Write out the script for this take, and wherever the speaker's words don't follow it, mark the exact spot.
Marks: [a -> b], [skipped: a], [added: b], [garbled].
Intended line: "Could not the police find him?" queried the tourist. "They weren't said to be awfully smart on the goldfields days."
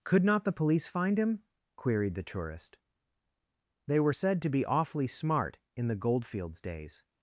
"Could not the police find him?" queried the tourist. "They [weren't -> were] said to be awfully smart [on -> in] the goldfields days."